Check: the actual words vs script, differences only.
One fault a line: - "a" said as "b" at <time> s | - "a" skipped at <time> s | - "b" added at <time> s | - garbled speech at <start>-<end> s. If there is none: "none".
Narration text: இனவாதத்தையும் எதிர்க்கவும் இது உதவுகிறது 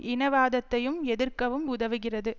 - "இது" skipped at 1.6 s